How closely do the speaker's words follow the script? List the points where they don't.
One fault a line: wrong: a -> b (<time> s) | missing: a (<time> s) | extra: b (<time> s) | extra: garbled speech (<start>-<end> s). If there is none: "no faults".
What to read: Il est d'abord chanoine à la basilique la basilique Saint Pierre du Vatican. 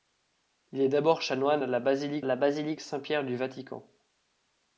no faults